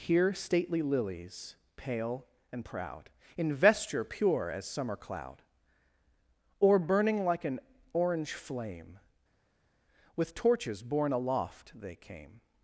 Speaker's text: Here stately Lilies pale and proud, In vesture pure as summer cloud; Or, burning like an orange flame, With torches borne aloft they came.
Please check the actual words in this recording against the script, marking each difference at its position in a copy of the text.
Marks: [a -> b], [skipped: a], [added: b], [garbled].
Here stately Lilies pale and proud, In vesture pure as summer cloud; Or, burning like an orange flame, With torches borne aloft they came.